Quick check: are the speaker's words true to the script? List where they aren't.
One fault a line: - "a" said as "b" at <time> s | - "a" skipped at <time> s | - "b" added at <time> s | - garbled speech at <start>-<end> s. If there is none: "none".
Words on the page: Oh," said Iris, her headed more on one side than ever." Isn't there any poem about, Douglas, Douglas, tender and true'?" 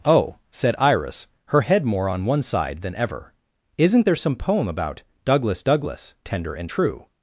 - "headed" said as "head" at 1.6 s
- "any" said as "some" at 4.2 s